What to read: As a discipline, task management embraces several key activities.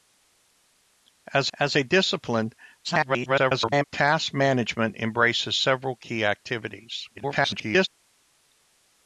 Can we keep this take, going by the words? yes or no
no